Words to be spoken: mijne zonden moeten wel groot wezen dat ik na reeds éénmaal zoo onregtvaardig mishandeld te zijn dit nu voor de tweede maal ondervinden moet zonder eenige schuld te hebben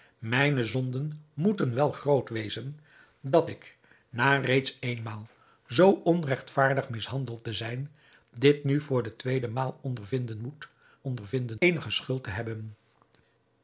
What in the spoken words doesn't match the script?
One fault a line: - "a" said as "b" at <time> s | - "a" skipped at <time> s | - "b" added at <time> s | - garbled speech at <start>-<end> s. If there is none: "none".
- "zonder" said as "ondervinden" at 11.0 s